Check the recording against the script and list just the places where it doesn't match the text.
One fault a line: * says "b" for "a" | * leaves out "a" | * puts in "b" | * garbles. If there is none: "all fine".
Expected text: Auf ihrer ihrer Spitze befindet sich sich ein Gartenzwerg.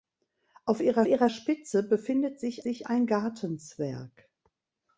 all fine